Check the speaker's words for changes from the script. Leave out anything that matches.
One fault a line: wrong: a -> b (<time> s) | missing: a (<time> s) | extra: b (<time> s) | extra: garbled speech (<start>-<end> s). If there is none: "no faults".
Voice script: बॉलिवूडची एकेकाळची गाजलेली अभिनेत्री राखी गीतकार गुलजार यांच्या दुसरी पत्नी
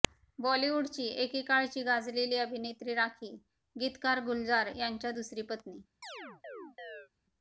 no faults